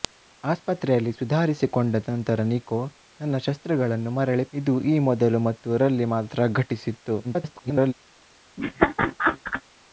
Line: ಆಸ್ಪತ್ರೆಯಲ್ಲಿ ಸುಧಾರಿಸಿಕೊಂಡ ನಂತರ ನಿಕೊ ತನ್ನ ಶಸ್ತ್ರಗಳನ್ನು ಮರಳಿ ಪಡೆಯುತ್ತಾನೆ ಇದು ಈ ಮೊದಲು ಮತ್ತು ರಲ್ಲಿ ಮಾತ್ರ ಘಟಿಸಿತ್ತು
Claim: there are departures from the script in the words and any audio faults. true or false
true